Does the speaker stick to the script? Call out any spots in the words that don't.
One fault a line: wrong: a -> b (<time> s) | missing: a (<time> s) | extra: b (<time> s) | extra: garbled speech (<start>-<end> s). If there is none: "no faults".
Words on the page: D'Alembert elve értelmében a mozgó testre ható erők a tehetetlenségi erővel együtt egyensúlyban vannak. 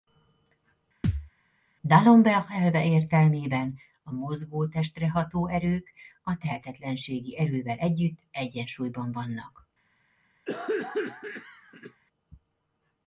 no faults